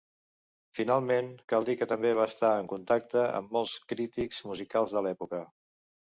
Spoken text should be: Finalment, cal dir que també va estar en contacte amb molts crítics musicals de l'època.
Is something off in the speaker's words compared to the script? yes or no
no